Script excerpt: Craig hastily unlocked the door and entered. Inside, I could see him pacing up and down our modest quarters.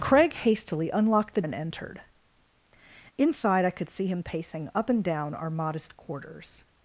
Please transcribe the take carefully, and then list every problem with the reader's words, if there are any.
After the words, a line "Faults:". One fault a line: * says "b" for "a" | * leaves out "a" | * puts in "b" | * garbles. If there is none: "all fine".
Craig hastily unlocked the and entered. Inside, I could see him pacing up and down our modest quarters.
Faults:
* leaves out "door"